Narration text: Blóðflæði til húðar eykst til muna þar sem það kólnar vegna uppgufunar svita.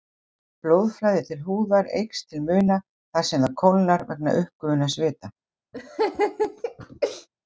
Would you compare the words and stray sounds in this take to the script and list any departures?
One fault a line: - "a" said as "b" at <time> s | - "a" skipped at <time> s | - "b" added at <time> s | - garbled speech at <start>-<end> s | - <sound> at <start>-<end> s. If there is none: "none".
- laugh at 5.7-7.3 s